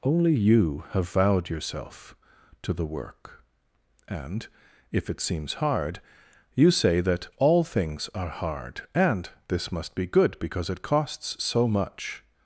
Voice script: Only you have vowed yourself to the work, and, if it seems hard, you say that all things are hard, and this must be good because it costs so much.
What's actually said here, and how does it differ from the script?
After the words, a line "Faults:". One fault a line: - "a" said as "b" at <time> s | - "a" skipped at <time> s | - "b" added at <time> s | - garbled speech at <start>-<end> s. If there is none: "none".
Only you have vowed yourself to the work, and, if it seems hard, you say that all things are hard, and this must be good because it costs so much.
Faults:
none